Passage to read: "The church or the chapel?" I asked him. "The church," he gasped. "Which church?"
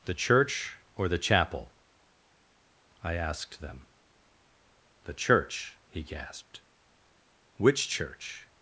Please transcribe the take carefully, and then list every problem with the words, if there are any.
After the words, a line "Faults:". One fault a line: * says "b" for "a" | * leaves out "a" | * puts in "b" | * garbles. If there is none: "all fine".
"The church or the chapel?" I asked them. "The church," he gasped. "Which church?"
Faults:
* says "them" for "him"